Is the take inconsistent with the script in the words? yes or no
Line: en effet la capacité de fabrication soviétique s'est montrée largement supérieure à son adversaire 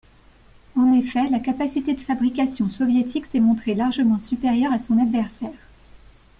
no